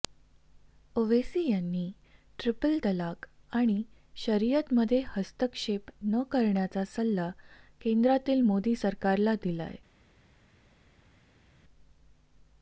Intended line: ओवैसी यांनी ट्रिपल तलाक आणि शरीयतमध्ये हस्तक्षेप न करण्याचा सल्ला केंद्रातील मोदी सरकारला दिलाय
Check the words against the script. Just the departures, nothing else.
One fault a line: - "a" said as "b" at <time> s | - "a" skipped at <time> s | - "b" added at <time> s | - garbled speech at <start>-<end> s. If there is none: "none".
none